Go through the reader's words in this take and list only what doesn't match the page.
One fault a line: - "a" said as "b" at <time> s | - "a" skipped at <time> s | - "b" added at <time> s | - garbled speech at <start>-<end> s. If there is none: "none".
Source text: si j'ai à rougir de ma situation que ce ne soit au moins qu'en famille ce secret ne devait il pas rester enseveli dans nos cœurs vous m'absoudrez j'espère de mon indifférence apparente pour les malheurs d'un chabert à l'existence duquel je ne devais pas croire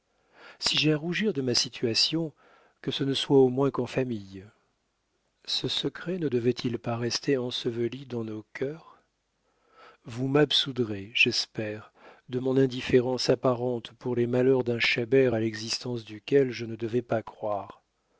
none